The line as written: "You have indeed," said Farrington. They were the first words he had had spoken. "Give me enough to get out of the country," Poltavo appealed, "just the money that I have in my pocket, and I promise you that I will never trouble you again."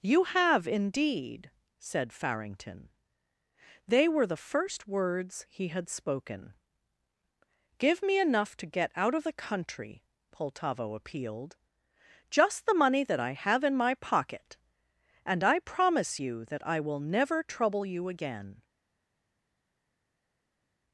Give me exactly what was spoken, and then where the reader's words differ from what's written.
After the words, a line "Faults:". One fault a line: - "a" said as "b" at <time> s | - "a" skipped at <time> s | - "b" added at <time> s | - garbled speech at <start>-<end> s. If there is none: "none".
"You have indeed," said Farrington. They were the first words he had spoken. "Give me enough to get out of the country," Poltavo appealed, "just the money that I have in my pocket, and I promise you that I will never trouble you again."
Faults:
- "had" skipped at 5.9 s